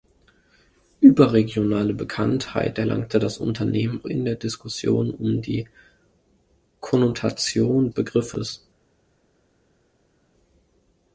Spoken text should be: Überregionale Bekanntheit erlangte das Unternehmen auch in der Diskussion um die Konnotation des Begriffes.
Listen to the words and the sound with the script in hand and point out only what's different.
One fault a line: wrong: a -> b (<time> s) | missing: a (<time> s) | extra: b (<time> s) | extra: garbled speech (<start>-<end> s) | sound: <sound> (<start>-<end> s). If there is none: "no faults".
missing: auch (4.0 s)
missing: des (7.9 s)